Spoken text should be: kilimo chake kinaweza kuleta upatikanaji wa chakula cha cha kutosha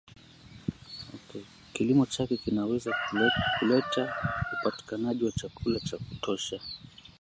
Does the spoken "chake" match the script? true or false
true